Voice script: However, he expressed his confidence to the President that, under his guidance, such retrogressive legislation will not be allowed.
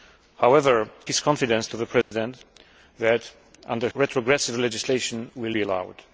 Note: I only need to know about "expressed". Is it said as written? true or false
false